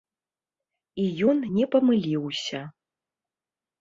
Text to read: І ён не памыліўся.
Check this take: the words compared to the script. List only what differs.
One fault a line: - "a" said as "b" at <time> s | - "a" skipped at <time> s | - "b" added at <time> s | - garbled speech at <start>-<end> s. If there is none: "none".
none